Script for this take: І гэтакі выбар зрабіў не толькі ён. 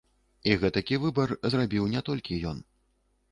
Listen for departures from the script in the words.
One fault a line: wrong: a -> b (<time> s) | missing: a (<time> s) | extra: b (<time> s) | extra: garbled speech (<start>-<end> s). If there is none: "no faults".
no faults